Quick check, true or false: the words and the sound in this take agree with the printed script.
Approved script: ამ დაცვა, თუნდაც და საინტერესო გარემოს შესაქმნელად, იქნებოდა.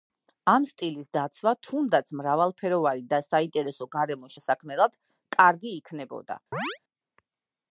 false